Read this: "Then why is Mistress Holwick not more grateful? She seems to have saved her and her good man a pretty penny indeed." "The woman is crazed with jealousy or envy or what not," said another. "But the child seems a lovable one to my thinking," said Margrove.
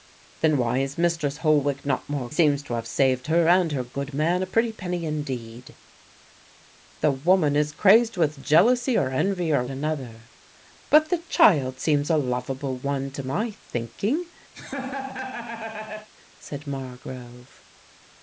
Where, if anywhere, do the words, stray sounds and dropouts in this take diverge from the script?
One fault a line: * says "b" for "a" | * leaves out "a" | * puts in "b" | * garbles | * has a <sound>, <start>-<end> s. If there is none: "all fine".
* leaves out "grateful She"
* leaves out "what not said"
* has a laugh, 14.5-16.1 s